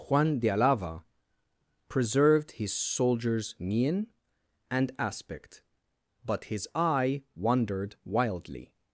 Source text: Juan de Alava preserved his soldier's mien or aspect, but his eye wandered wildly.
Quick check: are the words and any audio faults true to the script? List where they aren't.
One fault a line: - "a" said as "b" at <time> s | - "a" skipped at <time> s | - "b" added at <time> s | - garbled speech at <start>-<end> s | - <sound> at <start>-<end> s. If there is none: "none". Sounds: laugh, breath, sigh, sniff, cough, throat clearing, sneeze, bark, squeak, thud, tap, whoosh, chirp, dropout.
- "or" said as "and" at 4.7 s